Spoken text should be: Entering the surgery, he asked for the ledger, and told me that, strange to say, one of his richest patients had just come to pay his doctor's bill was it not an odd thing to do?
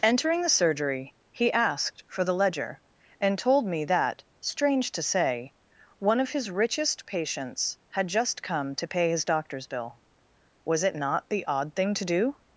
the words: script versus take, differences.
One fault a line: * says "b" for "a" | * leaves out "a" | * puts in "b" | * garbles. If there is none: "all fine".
* says "the" for "an"